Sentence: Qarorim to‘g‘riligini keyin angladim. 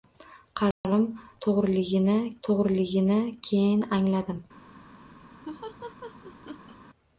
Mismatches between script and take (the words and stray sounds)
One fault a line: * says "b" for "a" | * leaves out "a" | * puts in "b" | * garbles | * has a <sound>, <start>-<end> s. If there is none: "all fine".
* has a dropout, 0.7-0.8 s
* puts in "to‘g‘riligini"
* has a laugh, 5.5-6.8 s